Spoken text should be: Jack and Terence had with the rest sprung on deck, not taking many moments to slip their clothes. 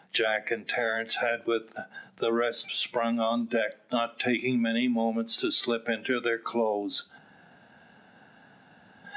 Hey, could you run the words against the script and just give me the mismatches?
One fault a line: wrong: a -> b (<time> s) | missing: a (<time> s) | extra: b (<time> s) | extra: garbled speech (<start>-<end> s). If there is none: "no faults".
extra: into (5.9 s)